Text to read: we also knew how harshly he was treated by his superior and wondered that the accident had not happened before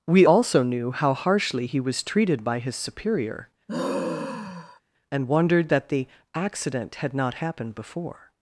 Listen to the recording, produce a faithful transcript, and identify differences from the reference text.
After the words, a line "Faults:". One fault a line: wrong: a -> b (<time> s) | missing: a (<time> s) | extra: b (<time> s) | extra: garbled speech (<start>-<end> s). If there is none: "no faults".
we also knew how harshly he was treated by his superior and wondered that the accident had not happened before
Faults:
no faults